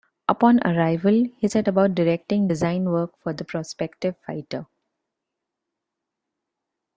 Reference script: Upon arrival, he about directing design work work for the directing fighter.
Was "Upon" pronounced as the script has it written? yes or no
yes